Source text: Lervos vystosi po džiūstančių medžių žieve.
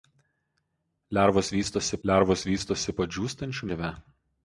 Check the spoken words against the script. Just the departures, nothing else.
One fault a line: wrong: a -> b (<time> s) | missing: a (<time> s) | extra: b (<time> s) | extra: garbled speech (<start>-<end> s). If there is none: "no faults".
extra: lervos vystosi (2.1 s)
missing: medžių (3.7 s)